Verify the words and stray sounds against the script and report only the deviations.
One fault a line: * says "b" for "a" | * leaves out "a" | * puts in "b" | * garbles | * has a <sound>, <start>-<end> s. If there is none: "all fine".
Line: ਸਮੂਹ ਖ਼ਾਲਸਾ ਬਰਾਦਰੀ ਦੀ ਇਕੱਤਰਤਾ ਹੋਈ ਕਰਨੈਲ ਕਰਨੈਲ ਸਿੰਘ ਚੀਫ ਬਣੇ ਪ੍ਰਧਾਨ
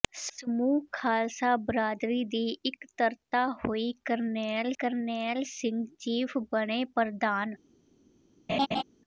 * has a laugh, 8.5-8.8 s